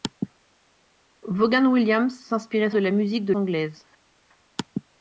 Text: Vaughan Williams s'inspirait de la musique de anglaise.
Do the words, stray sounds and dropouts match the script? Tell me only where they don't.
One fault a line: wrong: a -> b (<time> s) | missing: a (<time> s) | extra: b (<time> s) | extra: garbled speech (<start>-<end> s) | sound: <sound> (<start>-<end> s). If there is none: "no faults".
no faults